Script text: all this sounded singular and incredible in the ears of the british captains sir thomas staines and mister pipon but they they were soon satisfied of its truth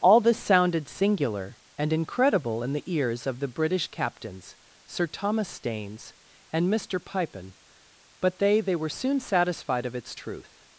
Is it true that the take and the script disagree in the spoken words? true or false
false